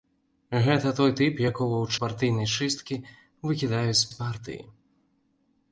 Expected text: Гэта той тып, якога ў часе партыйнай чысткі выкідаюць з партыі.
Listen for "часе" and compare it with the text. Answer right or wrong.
wrong